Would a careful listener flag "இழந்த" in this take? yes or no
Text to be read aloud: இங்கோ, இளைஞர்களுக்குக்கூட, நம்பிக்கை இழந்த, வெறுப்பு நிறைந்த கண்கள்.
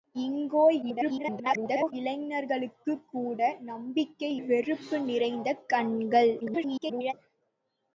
yes